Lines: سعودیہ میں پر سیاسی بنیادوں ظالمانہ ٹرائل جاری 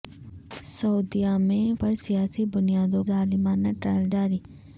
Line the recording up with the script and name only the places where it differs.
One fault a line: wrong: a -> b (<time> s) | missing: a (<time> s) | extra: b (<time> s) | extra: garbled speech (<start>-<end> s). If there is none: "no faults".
no faults